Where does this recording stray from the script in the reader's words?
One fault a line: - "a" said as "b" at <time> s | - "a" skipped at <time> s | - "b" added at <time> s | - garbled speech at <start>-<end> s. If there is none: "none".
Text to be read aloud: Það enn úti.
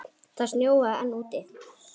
- "snjóaði" added at 0.5 s